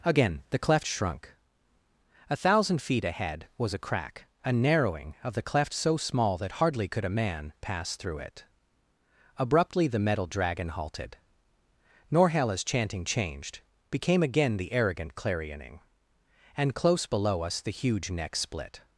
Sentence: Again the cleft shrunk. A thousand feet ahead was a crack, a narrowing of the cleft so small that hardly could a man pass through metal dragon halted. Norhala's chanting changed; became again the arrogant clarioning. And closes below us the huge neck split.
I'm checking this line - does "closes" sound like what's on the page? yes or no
no